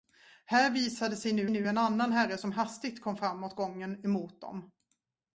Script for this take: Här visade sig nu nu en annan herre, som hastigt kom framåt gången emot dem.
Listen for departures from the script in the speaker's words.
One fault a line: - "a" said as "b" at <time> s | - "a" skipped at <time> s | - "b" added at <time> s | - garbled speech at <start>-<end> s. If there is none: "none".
none